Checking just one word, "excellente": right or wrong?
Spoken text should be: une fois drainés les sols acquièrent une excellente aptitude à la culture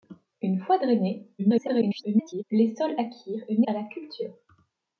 wrong